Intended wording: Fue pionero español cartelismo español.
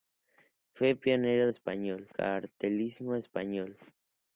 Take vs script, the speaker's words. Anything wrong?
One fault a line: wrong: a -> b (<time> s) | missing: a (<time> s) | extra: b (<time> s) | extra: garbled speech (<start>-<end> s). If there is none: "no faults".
no faults